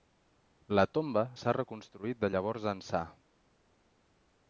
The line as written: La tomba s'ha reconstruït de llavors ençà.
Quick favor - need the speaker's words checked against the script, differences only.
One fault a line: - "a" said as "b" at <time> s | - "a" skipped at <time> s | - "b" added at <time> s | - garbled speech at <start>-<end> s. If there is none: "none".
none